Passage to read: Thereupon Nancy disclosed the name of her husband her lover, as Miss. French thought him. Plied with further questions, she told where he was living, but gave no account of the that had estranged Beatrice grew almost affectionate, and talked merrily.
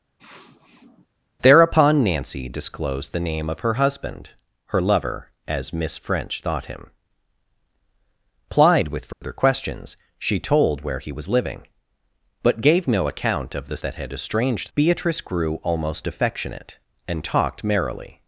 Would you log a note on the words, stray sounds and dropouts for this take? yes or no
yes